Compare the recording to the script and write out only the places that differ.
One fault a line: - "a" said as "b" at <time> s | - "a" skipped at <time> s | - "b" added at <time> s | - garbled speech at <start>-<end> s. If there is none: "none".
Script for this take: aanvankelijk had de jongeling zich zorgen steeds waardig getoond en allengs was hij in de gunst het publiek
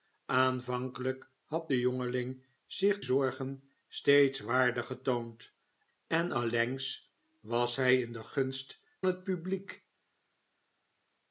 none